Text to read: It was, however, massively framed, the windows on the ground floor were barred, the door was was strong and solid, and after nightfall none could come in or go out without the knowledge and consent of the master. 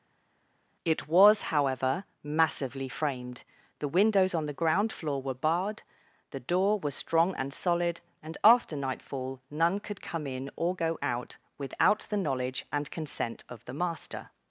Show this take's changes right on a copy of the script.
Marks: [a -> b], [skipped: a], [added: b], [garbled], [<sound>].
It was, however, massively framed, the windows on the ground floor were barred, the door was [skipped: was] strong and solid, and after nightfall none could come in or go out without the knowledge and consent of the master.